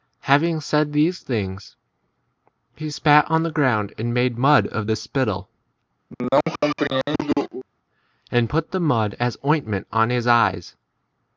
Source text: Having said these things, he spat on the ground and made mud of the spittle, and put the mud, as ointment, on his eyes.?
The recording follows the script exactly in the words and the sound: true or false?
false